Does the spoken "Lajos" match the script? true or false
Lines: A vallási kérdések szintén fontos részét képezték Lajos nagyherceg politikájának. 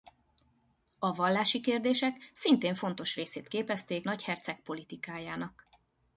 false